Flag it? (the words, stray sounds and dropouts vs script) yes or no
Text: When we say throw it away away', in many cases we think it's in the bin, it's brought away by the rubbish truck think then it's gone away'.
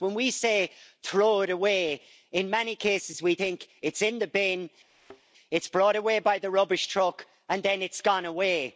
yes